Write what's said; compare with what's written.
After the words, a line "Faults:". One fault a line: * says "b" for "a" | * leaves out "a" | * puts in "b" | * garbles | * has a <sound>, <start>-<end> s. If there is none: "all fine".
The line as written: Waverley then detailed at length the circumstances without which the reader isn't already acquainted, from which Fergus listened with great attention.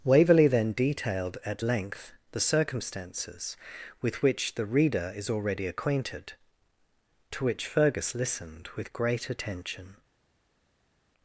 Waverley then detailed at length the circumstances with which the reader is already acquainted, to which Fergus listened with great attention.
Faults:
* says "with" for "without"
* says "is" for "isn't"
* says "to" for "from"